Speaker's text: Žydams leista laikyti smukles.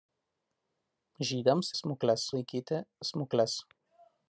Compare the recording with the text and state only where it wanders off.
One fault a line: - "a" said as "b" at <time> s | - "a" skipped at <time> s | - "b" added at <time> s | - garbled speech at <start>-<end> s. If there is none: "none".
- "leista" said as "smukles" at 1.8 s